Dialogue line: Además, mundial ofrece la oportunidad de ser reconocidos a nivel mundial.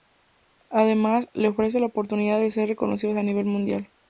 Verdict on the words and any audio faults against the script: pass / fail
fail